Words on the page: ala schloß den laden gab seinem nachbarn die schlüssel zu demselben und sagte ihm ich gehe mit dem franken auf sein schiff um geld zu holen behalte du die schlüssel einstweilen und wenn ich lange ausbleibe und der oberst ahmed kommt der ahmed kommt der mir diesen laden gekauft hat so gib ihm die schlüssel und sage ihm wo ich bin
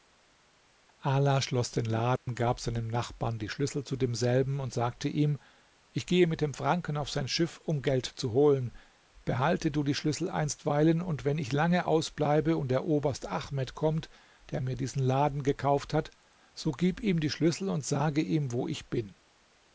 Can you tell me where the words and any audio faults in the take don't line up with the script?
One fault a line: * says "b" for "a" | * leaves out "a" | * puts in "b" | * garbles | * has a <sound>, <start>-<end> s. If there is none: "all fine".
* has a dropout, 2.2-2.3 s
* leaves out "ahmed kommt der"